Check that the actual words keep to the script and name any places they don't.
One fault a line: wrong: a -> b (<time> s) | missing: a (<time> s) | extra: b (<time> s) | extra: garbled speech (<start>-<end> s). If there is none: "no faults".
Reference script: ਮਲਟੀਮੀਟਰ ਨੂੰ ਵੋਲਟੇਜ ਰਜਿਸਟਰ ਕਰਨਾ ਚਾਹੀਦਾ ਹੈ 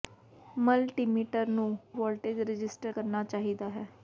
no faults